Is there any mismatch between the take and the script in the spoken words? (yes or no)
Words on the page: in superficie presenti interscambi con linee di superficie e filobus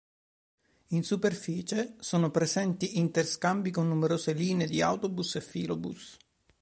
yes